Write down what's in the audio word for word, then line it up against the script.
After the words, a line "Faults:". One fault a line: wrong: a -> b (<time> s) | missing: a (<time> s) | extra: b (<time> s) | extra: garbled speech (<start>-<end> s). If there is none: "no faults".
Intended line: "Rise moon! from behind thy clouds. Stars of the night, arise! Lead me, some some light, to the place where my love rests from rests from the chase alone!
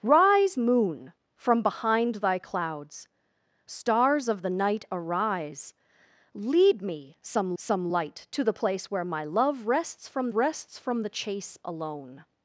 "Rise moon! from behind thy clouds. Stars of the night, arise! Lead me, some some light, to the place where my love rests from rests from the chase alone!
Faults:
no faults